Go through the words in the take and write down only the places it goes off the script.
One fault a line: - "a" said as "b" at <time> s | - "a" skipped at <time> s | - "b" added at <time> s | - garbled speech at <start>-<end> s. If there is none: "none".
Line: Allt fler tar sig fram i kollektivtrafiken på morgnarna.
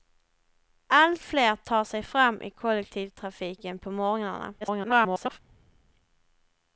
- garbled speech at 4.6-5.4 s